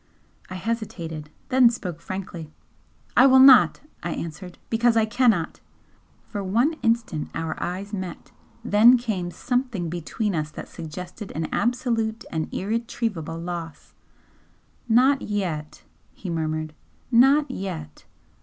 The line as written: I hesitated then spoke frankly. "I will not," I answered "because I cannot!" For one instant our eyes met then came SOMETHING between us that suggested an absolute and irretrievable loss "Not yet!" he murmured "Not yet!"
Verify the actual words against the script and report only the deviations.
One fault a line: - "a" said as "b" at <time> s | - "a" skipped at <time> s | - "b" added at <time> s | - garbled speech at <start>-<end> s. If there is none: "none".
none